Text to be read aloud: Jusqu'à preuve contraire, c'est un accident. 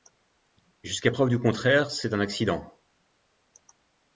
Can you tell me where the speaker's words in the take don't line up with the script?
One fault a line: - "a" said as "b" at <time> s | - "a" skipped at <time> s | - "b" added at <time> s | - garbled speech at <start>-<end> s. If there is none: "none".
- "du" added at 1.3 s